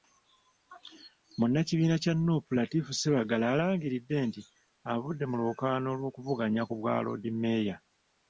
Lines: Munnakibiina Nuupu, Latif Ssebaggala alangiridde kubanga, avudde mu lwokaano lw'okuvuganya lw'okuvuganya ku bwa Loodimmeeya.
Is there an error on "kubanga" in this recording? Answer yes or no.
yes